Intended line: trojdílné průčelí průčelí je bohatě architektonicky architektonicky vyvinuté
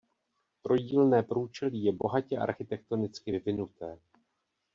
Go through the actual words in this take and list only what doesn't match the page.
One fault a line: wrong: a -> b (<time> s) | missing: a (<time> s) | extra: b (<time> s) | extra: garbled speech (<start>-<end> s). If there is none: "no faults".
missing: průčelí (1.8 s)
missing: architektonicky (3.3 s)